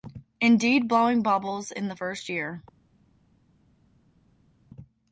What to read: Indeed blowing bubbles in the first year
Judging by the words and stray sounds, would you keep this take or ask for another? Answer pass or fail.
pass